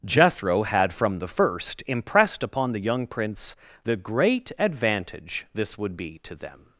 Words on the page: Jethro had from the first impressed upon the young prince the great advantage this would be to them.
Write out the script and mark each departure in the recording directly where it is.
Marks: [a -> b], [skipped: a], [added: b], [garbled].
Jethro had from the first impressed upon the young prince the great advantage this would be to them.